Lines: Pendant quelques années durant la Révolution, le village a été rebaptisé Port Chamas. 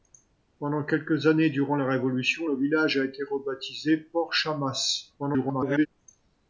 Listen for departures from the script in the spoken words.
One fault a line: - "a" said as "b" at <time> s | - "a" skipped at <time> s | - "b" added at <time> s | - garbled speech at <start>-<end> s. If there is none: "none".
- garbled speech at 5.2-5.9 s